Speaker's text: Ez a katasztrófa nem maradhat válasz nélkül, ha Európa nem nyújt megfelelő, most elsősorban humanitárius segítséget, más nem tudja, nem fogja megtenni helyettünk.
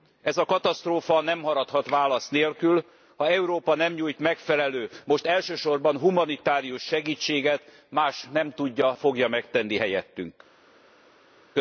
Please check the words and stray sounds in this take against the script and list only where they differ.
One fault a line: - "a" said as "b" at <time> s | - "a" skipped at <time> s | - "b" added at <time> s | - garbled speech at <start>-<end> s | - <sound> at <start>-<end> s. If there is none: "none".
- "nem" skipped at 8.9 s